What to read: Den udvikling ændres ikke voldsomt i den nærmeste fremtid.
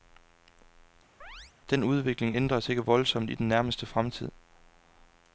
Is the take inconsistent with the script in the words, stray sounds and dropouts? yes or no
yes